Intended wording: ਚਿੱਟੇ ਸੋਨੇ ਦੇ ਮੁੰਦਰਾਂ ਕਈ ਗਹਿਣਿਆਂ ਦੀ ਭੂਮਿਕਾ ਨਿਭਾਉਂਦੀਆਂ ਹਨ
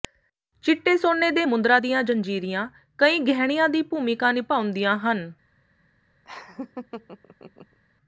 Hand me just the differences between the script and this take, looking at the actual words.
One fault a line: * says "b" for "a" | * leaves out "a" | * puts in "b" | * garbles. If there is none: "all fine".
* puts in "ਦੀਆਂ ਜੰਜੀਰੀਆਂ"